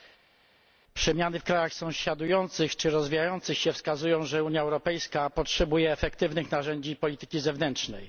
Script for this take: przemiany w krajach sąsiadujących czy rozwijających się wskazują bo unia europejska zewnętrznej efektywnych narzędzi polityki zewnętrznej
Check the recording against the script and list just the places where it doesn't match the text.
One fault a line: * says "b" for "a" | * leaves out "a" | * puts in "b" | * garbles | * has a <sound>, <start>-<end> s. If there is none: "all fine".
* says "że" for "bo"
* says "potrzebuje" for "zewnętrznej"